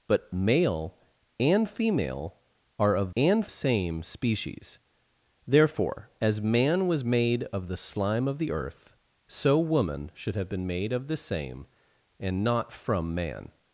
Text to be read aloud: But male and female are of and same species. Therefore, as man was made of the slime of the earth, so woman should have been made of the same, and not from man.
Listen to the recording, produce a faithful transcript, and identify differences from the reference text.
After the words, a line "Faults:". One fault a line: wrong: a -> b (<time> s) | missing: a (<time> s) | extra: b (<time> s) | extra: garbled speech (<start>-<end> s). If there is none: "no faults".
But male and female are of and same species. Therefore, as man was made of the slime of the earth, so woman should have been made of the same, and not from man.
Faults:
no faults